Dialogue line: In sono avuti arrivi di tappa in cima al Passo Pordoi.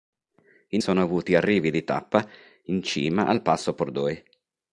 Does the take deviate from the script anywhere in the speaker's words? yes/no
no